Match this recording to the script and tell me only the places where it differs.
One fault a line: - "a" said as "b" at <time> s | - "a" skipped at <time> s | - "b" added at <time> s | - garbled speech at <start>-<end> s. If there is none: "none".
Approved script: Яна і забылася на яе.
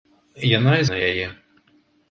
- "забылася" skipped at 0.9 s